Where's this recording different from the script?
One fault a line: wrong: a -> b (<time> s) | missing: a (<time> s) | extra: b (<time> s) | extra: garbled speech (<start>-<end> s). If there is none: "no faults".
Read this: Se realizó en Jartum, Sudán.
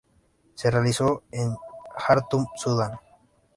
no faults